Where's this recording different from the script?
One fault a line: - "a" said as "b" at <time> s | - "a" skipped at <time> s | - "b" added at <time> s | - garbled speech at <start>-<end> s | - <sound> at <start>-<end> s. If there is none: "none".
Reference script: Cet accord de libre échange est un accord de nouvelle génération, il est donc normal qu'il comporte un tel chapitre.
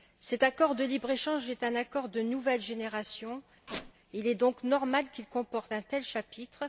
- squeak at 3.7-3.9 s